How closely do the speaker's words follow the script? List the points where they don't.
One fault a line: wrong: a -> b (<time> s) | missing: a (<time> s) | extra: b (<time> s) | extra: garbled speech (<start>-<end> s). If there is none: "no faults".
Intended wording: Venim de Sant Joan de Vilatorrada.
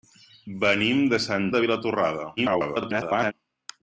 missing: Joan (1.4 s)
extra: garbled speech (2.4-3.3 s)